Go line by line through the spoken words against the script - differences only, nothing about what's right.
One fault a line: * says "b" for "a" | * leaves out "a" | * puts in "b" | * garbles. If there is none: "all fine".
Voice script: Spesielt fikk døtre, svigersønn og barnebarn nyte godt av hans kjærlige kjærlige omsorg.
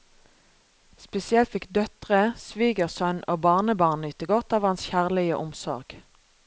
* leaves out "kjærlige"